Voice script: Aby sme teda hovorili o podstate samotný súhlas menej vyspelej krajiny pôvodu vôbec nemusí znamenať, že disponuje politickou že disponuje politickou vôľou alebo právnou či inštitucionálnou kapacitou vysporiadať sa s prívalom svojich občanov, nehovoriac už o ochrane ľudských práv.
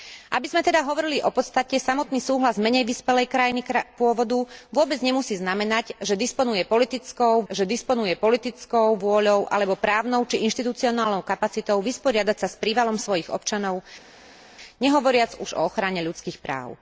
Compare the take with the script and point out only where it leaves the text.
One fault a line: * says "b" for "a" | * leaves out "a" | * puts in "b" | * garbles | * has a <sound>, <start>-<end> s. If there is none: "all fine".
all fine